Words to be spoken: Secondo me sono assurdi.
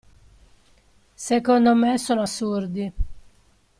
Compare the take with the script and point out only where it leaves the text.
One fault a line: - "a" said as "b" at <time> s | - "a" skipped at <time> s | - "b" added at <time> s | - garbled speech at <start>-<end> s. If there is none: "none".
none